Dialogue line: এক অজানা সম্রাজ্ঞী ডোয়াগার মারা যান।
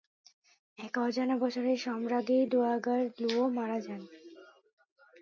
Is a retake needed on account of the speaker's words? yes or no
yes